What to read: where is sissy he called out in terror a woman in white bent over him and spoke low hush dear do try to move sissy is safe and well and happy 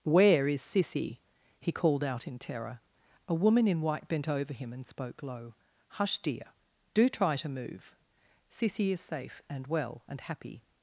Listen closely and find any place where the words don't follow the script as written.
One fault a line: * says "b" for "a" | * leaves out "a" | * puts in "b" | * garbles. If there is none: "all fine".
all fine